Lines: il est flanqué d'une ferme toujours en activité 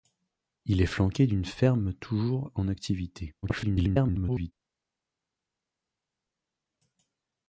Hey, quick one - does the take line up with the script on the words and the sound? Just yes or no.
no